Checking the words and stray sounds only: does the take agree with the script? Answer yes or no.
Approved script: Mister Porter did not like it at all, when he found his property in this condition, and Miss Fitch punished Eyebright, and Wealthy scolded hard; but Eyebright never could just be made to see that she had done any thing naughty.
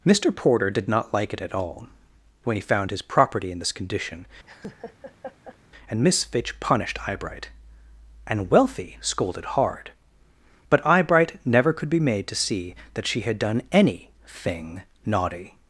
no